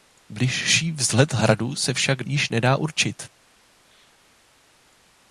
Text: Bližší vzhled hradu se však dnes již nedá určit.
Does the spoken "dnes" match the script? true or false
false